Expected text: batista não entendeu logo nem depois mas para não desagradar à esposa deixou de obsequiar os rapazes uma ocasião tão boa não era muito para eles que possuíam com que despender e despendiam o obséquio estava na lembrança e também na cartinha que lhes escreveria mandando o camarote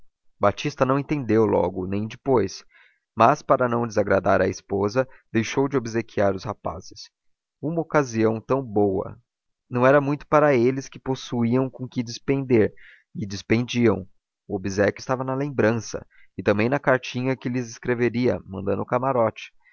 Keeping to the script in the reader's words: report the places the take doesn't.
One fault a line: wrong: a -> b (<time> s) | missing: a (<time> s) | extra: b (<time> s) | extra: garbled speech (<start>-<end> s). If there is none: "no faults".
no faults